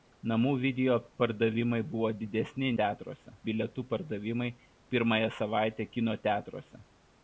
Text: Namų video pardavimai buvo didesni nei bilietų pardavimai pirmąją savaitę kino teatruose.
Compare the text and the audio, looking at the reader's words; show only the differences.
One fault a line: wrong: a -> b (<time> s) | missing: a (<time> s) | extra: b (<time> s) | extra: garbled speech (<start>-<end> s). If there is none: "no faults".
wrong: nei -> teatruose (2.8 s)